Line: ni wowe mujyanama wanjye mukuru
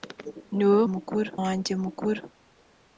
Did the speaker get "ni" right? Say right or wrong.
right